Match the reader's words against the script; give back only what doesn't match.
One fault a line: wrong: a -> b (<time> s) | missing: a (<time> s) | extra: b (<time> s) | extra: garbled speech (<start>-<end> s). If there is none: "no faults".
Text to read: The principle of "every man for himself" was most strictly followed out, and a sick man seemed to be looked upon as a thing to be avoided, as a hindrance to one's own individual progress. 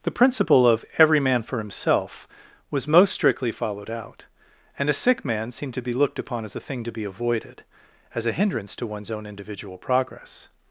no faults